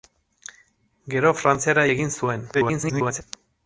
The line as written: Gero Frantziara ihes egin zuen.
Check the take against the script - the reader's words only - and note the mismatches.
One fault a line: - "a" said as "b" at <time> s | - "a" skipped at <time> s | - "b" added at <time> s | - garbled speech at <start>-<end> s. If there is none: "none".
- "ihes" skipped at 1.9 s
- garbled speech at 2.5-3.2 s